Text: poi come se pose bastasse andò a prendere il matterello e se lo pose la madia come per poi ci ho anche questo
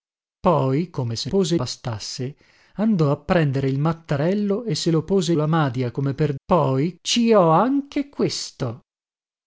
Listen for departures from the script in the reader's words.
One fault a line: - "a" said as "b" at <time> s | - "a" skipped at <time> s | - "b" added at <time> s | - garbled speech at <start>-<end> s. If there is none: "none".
none